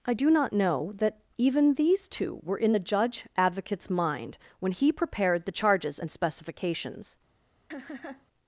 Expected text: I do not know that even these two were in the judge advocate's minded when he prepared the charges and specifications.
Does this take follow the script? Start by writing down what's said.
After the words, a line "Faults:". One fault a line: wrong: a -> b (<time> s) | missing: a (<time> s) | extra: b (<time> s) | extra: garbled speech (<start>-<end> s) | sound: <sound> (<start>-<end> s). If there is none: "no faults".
I do not know that even these two were in the judge advocate's mind when he prepared the charges and specifications.
Faults:
wrong: minded -> mind (3.9 s)
sound: laugh (7.7-8.3 s)